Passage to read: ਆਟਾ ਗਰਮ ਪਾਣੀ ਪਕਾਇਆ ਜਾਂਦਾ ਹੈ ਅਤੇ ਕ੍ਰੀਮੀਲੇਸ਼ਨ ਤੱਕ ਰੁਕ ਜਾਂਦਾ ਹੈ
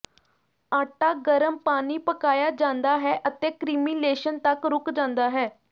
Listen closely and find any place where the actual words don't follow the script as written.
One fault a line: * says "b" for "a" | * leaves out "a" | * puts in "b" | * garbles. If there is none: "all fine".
all fine